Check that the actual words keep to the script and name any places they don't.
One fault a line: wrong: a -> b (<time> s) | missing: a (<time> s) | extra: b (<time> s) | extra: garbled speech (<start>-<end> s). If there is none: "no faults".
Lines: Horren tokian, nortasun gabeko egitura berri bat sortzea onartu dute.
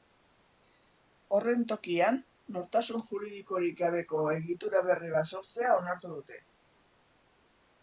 extra: juridikorik (3.1 s)